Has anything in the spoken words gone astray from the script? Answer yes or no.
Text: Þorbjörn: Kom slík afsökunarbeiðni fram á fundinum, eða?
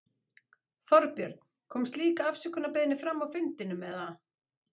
no